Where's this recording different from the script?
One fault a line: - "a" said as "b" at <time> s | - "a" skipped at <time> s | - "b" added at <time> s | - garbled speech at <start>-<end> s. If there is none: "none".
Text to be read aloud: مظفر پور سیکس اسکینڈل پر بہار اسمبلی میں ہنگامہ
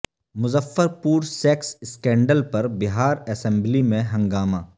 none